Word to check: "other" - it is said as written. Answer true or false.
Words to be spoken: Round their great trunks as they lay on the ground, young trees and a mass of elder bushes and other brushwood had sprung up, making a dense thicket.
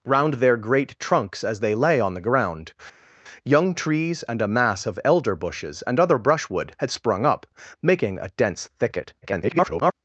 true